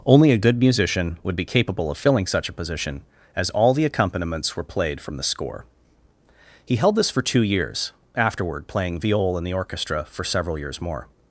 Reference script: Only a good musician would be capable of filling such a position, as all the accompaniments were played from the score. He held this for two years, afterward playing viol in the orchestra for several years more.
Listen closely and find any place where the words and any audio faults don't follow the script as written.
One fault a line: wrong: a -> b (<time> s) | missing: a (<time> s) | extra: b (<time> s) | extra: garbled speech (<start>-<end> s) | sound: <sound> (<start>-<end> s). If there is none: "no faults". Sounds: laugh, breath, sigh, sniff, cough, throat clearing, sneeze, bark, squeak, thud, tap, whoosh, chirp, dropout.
no faults